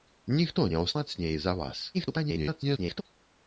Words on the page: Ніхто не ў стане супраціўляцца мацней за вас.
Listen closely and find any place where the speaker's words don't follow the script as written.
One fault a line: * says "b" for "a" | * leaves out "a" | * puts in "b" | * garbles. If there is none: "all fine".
* leaves out "стане супраціўляцца"
* garbles